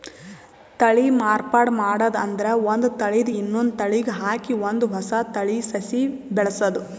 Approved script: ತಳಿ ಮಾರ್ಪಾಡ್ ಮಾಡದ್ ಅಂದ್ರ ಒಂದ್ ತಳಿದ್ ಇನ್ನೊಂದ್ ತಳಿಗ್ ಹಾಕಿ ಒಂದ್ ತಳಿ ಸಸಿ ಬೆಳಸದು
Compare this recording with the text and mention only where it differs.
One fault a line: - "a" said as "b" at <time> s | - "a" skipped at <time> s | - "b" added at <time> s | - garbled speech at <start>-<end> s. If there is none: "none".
- "ಹೊಸ" added at 4.9 s